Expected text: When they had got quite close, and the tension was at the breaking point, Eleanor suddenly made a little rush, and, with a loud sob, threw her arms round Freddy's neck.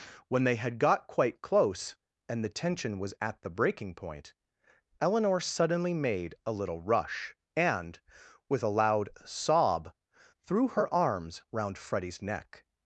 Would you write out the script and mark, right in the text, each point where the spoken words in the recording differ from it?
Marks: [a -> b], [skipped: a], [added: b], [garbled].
When they had got quite close, and the tension was at the breaking point, Eleanor suddenly made a little rush, and, with a loud sob, threw her arms round Freddy's neck.